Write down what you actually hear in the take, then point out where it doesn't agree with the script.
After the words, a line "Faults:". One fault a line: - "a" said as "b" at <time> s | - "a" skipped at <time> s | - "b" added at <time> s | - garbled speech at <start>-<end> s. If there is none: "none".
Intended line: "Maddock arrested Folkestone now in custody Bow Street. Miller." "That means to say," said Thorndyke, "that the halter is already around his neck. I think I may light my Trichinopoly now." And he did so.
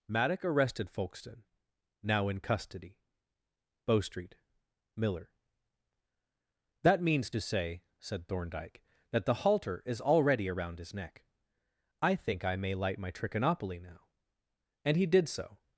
"Maddock arrested Folkestone now in custody Bow Street. Miller." "That means to say," said Thorndyke, "that the halter is already around his neck. I think I may light my Trichinopoly now." And he did so.
Faults:
none